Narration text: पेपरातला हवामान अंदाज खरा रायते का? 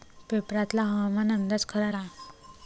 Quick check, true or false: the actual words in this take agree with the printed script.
false